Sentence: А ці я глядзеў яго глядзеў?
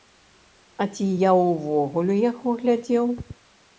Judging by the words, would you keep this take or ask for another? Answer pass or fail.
fail